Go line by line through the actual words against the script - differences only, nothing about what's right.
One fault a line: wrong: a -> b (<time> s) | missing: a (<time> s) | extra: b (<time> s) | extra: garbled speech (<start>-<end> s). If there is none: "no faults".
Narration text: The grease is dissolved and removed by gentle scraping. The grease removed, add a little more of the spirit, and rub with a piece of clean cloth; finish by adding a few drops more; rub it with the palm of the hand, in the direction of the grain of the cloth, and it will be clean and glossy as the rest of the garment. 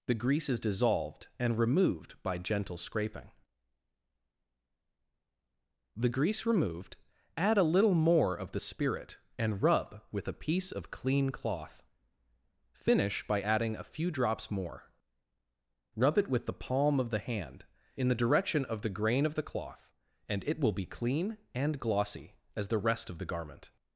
no faults